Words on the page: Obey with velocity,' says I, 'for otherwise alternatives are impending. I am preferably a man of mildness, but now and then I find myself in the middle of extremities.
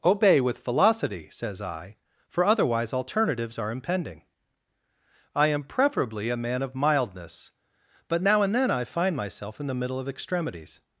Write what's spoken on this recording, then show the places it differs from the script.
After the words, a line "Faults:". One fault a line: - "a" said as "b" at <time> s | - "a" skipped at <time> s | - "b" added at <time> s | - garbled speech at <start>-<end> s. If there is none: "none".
Obey with velocity,' says I, 'for otherwise alternatives are impending. I am preferably a man of mildness, but now and then I find myself in the middle of extremities.
Faults:
none